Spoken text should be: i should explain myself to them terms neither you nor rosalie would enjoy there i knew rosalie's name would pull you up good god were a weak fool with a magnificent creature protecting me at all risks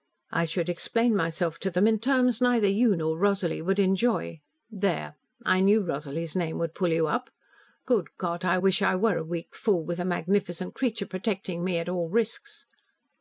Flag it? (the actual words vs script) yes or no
yes